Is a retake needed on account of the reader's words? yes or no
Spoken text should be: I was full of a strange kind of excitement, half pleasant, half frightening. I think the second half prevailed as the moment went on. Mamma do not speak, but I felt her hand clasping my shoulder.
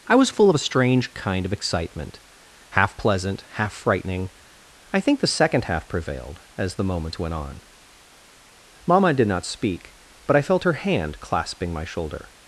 yes